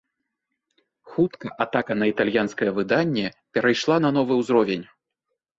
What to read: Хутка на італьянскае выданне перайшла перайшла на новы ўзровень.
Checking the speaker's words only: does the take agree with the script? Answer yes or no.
no